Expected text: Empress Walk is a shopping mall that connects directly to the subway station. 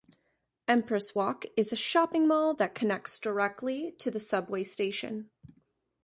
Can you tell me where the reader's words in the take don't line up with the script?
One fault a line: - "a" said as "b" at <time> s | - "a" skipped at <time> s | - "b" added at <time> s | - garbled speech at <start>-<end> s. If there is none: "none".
none